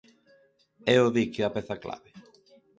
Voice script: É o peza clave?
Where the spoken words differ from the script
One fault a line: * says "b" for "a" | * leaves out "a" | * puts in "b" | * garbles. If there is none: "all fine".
* puts in "dique a"